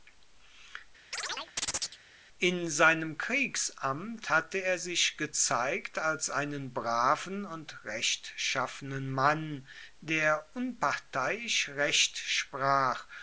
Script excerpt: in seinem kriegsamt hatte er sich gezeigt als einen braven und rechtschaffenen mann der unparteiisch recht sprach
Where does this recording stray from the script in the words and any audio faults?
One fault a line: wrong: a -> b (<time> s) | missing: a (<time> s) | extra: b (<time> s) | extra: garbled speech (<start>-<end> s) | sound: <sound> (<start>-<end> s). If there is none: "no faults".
sound: chirp (1.1-2.0 s)